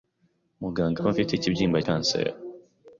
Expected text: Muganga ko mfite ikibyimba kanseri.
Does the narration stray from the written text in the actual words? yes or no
no